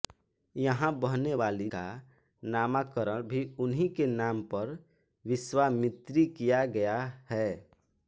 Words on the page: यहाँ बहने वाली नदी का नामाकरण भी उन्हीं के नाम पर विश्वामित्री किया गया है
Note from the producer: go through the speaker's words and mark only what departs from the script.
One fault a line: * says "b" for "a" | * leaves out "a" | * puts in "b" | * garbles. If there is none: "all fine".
* leaves out "नदी"